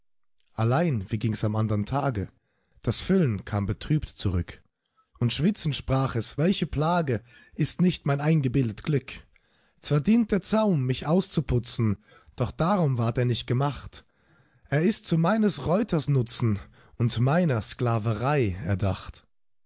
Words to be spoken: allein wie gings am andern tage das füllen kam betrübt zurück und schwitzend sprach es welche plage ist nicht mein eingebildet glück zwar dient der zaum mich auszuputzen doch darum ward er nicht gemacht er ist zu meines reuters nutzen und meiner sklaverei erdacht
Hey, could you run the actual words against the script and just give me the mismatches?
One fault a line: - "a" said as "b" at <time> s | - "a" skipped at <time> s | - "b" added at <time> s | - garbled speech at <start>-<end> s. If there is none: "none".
none